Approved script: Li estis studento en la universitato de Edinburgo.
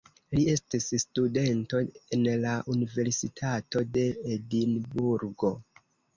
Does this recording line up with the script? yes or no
yes